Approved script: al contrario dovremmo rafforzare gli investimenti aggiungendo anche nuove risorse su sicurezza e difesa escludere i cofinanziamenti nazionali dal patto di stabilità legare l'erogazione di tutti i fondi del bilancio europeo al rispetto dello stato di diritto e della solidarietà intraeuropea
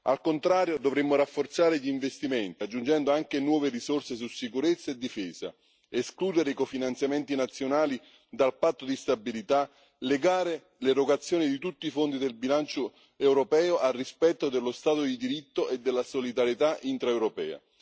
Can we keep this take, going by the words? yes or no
yes